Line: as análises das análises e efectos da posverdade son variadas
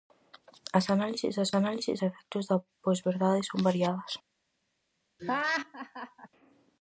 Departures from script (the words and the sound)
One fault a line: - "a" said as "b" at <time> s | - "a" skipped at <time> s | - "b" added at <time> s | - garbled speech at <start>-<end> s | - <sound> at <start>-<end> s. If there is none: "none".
- laugh at 5.2-6.3 s